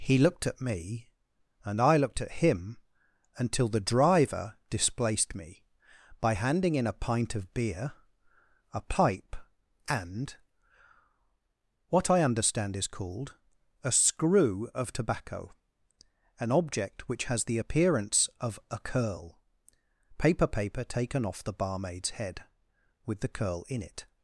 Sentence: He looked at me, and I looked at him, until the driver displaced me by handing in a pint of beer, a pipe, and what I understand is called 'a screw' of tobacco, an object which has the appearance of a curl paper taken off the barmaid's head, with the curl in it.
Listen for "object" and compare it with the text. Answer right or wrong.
right